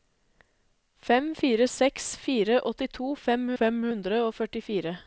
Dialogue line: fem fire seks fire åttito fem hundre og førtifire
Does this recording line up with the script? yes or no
no